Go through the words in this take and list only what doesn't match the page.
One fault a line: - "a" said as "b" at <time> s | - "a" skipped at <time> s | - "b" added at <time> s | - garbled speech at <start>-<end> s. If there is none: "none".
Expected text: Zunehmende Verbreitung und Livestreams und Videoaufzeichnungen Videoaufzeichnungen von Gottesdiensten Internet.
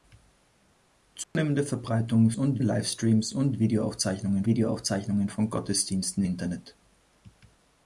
none